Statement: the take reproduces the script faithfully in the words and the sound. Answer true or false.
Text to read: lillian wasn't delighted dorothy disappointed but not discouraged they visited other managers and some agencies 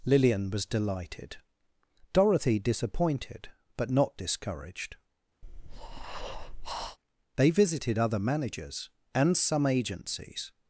false